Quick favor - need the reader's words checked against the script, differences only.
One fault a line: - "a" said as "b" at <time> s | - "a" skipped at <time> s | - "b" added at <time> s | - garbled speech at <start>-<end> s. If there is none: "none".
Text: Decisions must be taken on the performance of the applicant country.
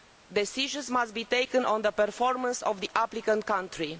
none